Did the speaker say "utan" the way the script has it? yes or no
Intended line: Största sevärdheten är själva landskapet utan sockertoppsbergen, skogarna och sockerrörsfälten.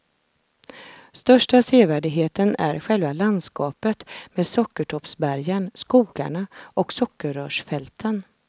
no